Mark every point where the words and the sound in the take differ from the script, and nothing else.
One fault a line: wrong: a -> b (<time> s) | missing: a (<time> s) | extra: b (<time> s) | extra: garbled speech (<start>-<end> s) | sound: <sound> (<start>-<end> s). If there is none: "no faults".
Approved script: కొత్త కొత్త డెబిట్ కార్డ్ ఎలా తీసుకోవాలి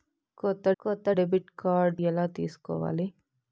no faults